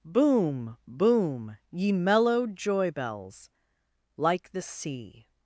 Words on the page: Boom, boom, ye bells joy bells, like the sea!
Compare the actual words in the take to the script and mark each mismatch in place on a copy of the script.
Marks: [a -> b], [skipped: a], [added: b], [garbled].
Boom, boom, ye [bells -> mellow] joy bells, like the sea!